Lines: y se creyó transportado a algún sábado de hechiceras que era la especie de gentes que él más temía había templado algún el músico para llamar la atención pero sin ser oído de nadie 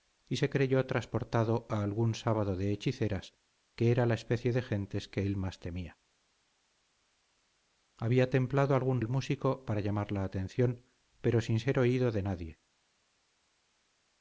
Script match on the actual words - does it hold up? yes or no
yes